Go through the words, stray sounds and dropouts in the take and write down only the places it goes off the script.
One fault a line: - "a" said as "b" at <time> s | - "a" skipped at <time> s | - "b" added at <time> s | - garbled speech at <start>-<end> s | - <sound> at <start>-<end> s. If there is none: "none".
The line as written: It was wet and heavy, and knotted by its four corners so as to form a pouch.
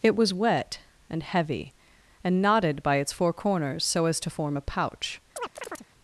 - chirp at 5.4-5.9 s